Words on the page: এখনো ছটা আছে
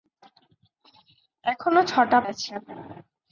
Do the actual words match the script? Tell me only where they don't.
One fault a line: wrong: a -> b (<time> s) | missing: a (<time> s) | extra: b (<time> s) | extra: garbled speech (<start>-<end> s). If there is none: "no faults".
no faults